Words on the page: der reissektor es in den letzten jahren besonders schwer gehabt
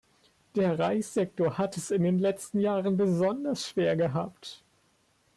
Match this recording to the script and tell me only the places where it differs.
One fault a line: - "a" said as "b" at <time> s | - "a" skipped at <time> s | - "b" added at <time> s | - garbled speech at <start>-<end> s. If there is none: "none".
- "hat" added at 1.6 s